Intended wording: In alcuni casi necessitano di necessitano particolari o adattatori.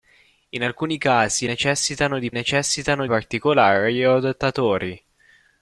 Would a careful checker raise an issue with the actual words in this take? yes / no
no